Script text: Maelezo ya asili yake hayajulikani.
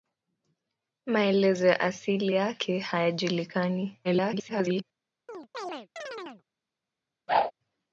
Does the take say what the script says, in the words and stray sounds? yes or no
no